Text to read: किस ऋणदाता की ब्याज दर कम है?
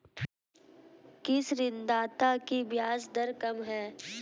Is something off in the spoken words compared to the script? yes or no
no